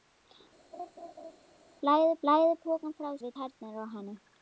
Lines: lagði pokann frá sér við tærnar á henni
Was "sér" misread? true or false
true